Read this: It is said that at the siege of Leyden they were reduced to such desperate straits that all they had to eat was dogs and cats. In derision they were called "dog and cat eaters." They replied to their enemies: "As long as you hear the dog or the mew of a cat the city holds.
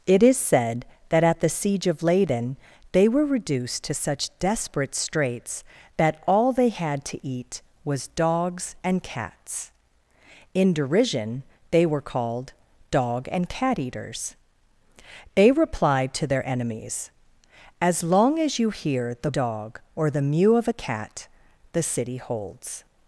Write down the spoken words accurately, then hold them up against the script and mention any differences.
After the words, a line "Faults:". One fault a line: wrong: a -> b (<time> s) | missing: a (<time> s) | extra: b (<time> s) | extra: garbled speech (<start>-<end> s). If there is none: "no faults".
It is said that at the siege of Leyden they were reduced to such desperate straits that all they had to eat was dogs and cats. In derision they were called "dog and cat eaters." They replied to their enemies: "As long as you hear the dog or the mew of a cat the city holds.
Faults:
no faults